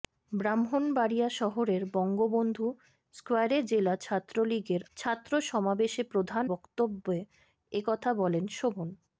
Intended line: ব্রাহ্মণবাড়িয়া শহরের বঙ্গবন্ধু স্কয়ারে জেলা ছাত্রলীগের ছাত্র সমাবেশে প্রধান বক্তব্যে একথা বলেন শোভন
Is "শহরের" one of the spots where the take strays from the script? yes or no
no